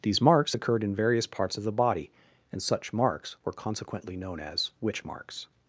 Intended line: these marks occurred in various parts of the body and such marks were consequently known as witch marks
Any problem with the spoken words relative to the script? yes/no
no